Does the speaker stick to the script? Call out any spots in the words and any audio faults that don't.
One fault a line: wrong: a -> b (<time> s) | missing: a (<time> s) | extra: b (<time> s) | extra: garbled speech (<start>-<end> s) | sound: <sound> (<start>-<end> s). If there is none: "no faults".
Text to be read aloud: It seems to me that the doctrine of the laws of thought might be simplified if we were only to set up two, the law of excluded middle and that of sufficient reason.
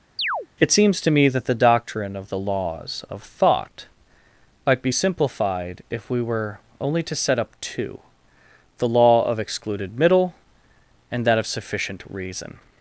sound: chirp (0.2-0.5 s)